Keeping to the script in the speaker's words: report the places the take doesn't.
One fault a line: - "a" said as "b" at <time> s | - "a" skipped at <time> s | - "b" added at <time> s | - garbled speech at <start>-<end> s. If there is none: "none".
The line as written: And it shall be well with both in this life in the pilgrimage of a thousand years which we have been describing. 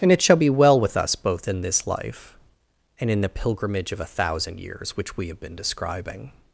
- "us" added at 1.0 s
- "and" added at 3.0 s